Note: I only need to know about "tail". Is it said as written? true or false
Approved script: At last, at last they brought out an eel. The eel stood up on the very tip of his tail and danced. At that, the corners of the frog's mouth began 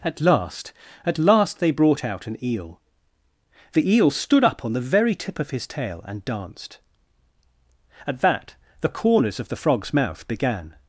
true